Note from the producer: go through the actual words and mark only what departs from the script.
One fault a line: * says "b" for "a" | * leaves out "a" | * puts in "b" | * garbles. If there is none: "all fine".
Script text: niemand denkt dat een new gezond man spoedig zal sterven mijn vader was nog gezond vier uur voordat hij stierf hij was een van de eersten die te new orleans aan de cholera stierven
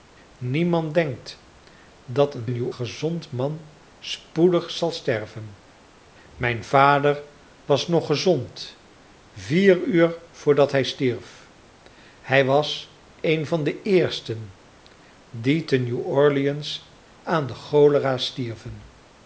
all fine